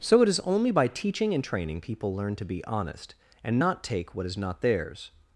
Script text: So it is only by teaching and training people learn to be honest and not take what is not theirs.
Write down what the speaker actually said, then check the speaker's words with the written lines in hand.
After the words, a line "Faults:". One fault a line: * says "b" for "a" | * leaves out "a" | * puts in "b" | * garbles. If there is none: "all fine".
So it is only by teaching and training people learn to be honest and not take what is not theirs.
Faults:
all fine